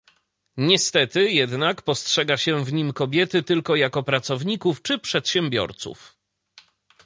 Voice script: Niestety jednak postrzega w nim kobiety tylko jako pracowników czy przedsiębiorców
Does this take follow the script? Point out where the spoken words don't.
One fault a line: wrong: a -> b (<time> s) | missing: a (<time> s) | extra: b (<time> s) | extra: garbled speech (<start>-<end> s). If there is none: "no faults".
extra: się (2.4 s)